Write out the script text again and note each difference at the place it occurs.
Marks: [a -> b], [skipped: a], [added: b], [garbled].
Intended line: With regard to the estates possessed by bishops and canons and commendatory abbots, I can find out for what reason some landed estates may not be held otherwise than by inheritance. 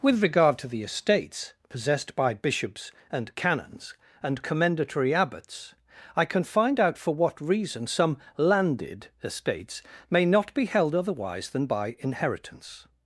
With regard to the estates possessed by bishops and canons and commendatory abbots, I can find out for what reason some landed estates may not be held otherwise than by inheritance.